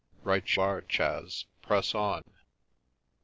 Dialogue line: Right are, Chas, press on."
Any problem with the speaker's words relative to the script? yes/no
no